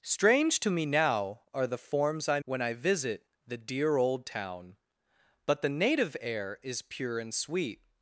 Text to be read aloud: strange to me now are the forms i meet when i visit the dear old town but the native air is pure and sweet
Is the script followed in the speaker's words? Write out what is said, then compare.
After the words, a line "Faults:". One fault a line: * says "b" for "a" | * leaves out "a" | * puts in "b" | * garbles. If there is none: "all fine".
strange to me now are the forms i when i visit the dear old town but the native air is pure and sweet
Faults:
* leaves out "meet"